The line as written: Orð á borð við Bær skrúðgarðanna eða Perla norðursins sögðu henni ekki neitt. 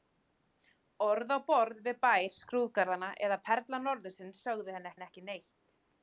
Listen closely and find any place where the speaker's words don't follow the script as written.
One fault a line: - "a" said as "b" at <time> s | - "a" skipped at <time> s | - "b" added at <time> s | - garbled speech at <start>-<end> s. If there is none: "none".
- "henni" added at 5.0 s